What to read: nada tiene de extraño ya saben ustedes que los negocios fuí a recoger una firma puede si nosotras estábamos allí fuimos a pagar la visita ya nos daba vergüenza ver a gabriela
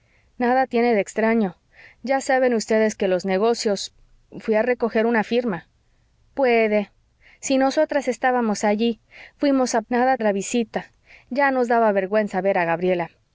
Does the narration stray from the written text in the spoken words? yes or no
yes